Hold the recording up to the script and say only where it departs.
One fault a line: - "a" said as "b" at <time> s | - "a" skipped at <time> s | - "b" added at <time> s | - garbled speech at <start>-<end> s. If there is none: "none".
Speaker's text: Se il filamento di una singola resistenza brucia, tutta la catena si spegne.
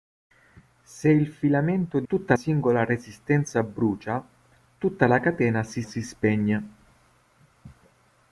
- "una" said as "tutta" at 2.1 s
- "si" added at 5.8 s